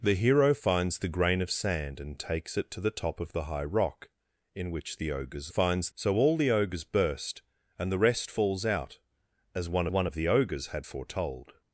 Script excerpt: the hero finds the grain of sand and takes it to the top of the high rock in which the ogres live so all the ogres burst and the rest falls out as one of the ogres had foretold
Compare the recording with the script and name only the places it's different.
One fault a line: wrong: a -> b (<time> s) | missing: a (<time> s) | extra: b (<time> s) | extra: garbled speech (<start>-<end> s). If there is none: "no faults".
wrong: live -> finds (5.5 s)
extra: one (9.9 s)